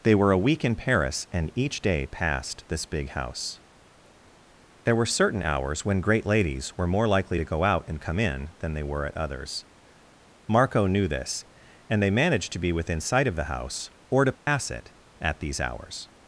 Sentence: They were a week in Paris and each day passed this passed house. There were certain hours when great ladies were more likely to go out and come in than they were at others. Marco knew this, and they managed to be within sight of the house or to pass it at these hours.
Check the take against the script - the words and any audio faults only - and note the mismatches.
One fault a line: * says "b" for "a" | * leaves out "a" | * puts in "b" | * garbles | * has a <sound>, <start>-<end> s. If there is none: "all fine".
* says "big" for "passed"
* has a dropout, 14.3-14.5 s